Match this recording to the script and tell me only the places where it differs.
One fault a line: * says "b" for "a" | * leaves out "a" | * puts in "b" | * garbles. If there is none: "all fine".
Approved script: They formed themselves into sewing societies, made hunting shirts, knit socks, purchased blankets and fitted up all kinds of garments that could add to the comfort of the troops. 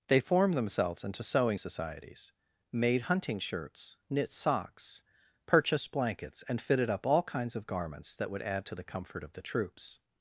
* says "would" for "could"